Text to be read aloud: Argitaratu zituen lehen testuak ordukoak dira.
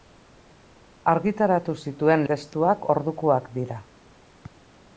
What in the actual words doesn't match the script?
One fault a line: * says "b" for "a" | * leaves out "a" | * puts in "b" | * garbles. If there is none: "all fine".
* leaves out "lehen"